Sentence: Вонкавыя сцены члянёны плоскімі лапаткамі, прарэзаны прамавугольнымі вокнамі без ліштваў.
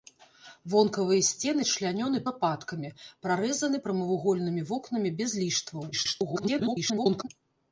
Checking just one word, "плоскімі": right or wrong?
wrong